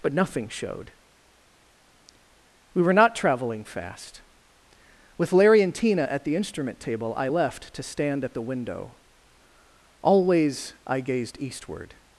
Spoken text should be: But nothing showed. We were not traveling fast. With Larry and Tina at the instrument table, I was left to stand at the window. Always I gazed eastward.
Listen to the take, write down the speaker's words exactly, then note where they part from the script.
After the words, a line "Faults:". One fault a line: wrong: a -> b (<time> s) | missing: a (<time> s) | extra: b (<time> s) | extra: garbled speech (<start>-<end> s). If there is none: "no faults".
But nothing showed. We were not traveling fast. With Larry and Tina at the instrument table, I left to stand at the window. Always I gazed eastward.
Faults:
missing: was (7.3 s)